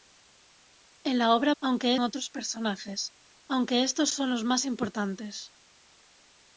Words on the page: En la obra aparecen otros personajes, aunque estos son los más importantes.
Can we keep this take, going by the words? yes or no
no